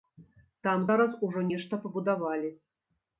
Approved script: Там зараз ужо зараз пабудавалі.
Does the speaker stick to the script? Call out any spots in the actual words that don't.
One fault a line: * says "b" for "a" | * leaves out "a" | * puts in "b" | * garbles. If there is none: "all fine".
* says "нешта" for "зараз"